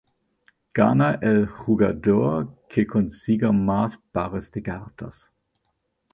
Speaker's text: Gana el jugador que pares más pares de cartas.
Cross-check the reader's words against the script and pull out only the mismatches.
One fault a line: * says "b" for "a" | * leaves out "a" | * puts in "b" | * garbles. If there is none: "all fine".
* says "consiga" for "pares"